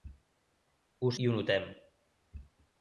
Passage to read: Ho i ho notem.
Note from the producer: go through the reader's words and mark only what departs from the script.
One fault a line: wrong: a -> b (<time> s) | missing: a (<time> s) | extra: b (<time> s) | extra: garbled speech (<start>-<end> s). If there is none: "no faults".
no faults